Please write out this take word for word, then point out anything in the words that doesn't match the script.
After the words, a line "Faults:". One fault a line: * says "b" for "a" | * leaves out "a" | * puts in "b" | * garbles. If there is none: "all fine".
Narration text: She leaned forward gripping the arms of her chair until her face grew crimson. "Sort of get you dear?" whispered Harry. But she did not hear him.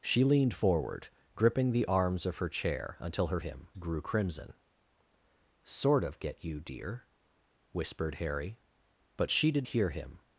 She leaned forward gripping the arms of her chair until her him grew crimson. "Sort of get you dear?" whispered Harry. But she did hear him.
Faults:
* says "him" for "face"
* leaves out "not"